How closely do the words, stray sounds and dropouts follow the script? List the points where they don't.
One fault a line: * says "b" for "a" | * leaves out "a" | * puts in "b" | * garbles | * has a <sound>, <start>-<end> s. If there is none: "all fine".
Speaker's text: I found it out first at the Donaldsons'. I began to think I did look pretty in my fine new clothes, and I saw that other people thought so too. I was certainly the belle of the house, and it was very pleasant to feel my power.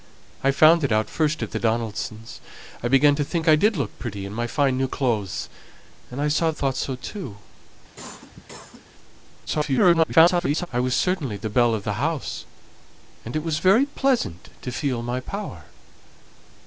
* leaves out "that other people"
* has a cough, 8.0-8.9 s
* garbles